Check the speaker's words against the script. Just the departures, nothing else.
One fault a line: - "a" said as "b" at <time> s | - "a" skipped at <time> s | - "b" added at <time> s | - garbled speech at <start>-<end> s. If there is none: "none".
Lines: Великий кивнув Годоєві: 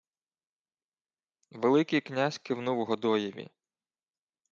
- "князь" added at 2.0 s